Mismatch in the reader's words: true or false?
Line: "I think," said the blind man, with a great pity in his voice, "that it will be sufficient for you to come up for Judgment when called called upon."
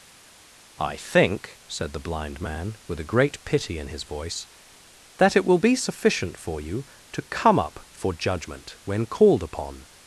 true